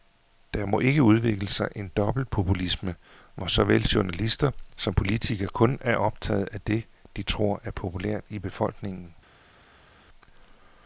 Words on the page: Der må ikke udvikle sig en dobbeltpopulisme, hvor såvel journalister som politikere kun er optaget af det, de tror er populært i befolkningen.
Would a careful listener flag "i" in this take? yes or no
no